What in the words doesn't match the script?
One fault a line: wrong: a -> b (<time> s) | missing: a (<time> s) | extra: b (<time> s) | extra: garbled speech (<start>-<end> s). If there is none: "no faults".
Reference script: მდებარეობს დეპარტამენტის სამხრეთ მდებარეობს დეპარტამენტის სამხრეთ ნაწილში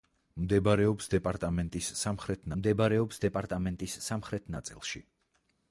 no faults